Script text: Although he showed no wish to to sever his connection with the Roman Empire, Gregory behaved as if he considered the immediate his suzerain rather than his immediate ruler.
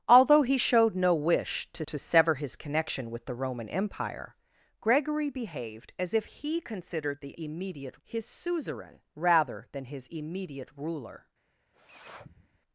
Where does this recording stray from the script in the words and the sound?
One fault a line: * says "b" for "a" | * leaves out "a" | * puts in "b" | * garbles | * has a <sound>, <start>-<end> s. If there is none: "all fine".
* has a sniff, 11.7-12.6 s